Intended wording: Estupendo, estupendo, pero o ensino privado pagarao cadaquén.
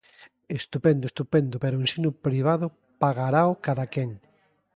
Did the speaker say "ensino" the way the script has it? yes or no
yes